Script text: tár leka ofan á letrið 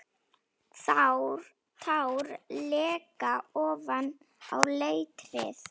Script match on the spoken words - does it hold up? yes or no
yes